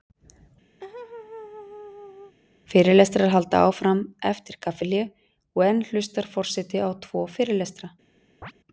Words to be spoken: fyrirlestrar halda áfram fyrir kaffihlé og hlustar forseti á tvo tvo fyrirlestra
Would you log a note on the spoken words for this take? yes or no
yes